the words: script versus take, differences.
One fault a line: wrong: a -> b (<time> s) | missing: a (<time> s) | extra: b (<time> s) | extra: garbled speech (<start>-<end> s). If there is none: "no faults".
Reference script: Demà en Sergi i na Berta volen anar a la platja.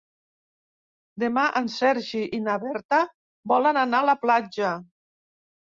no faults